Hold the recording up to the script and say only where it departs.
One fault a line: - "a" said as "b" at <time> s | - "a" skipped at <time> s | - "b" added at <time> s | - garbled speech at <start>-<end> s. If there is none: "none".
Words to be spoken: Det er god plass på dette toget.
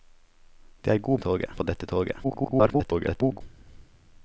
- "plass" said as "toget" at 1.2 s
- garbled speech at 2.2-3.4 s